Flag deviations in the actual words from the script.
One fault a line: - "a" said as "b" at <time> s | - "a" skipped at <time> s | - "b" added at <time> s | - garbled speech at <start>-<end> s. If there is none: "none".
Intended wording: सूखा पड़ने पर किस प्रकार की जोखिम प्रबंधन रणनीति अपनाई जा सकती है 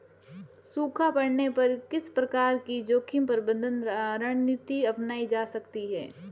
none